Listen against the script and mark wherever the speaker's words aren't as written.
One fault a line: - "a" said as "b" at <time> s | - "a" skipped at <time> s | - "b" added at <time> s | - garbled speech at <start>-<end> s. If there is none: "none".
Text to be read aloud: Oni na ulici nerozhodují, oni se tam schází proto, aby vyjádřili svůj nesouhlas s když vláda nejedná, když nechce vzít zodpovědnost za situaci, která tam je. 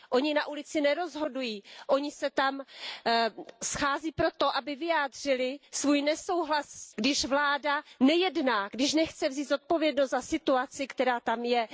none